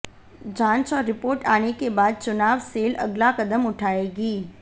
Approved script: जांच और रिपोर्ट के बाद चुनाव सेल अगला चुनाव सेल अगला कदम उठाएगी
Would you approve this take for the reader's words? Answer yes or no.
no